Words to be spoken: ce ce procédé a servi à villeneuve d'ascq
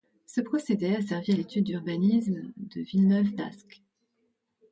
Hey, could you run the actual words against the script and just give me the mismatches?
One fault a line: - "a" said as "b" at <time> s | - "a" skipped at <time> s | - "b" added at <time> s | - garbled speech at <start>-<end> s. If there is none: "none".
- "ce" skipped at 0.4 s
- "l'étude d'urbanisme de" added at 1.3 s